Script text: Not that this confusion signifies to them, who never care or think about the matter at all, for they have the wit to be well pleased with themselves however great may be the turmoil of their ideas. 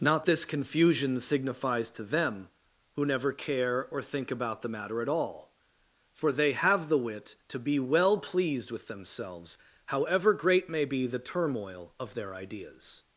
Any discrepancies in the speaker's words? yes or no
yes